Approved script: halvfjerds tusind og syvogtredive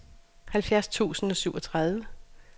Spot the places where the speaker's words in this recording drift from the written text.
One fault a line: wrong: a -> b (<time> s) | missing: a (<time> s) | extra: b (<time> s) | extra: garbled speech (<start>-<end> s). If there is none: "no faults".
no faults